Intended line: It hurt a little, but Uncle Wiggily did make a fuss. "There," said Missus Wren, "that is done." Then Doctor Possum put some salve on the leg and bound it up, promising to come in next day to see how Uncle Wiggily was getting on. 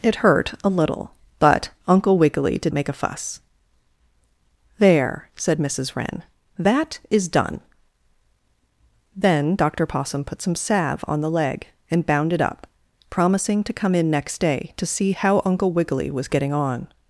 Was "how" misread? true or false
false